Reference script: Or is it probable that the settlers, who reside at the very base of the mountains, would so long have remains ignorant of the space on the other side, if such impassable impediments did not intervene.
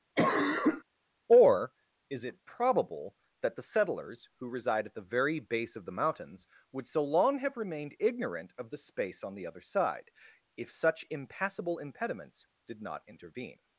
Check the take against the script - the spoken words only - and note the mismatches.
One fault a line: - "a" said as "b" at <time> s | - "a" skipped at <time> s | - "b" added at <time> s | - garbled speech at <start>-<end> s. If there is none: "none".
- "remains" said as "remained" at 7.6 s